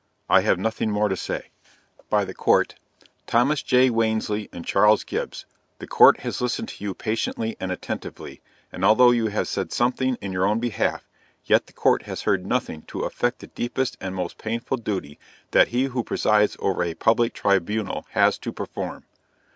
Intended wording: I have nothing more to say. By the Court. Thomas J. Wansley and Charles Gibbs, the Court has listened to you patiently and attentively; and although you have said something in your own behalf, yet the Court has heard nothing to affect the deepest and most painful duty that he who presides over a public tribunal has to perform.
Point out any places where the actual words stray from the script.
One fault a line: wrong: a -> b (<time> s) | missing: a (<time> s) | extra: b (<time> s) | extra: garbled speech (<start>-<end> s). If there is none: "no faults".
no faults